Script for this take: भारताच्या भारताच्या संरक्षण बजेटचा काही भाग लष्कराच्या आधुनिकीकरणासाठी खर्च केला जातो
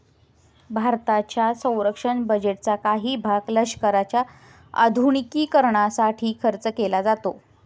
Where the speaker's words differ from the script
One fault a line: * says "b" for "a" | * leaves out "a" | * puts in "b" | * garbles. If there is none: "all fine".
* leaves out "भारताच्या"